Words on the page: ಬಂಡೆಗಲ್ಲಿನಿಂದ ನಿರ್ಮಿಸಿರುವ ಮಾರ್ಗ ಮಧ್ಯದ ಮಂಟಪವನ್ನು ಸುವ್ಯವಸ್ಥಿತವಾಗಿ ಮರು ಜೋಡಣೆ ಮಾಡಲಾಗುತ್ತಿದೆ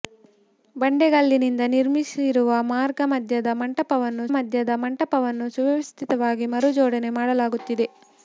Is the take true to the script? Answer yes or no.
no